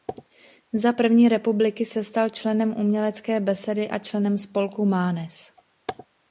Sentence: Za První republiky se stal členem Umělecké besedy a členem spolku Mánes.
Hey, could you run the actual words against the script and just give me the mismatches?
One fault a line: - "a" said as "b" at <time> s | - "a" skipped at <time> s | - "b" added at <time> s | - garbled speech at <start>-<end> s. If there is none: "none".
none